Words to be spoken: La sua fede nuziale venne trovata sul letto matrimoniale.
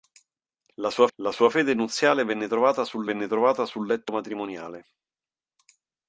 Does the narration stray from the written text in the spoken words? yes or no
yes